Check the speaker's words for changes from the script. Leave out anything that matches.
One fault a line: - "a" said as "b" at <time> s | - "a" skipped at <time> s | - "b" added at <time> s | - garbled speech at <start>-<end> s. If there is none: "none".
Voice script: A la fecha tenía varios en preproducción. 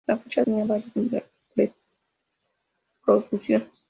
none